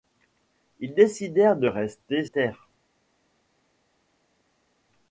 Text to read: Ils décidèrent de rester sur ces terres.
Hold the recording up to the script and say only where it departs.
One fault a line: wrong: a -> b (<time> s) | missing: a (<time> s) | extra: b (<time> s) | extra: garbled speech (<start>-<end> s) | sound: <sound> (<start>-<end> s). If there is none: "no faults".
missing: sur ces (2.2 s)